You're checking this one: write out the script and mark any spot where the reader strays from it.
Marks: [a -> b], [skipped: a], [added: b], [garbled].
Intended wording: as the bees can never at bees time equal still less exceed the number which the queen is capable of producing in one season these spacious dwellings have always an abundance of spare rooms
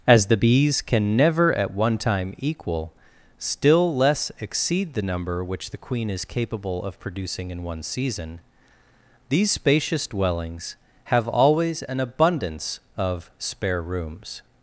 as the bees can never at [bees -> one] time equal still less exceed the number which the queen is capable of producing in one season these spacious dwellings have always an abundance of spare rooms